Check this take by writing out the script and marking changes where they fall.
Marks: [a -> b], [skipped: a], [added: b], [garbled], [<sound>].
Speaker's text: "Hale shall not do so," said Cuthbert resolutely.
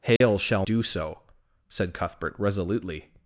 "Hale [dropout] shall [skipped: not] do so," said Cuthbert resolutely.